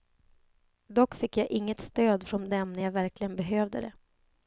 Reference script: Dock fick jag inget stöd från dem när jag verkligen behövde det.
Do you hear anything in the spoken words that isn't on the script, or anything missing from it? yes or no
no